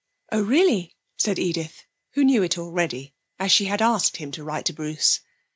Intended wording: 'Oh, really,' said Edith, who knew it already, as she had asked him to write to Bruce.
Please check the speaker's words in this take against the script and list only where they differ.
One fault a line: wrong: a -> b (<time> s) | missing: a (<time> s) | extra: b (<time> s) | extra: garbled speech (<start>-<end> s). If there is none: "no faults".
no faults